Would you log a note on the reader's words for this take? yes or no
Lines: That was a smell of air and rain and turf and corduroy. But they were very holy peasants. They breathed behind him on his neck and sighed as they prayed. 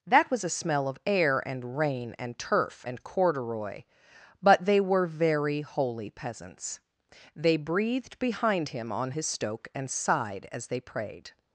yes